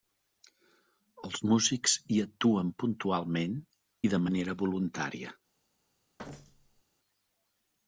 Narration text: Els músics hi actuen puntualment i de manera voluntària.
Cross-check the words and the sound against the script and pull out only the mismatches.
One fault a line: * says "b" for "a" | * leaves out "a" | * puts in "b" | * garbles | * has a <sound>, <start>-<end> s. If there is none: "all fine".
* has a thud, 6.2-6.8 s